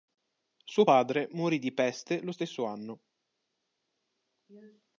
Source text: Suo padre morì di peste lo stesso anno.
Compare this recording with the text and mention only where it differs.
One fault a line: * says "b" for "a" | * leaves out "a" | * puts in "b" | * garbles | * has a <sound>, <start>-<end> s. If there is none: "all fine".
all fine